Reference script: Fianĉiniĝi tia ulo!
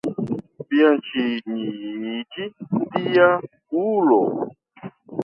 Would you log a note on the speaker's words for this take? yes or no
no